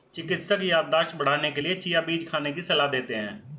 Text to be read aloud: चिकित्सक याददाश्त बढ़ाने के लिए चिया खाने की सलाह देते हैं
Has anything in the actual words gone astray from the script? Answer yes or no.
yes